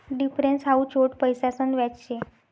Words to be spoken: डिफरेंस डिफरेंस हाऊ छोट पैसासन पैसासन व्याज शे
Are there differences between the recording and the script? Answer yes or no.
yes